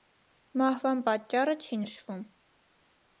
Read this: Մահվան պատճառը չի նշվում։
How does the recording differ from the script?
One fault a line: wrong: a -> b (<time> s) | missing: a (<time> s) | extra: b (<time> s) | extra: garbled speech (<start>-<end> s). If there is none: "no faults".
no faults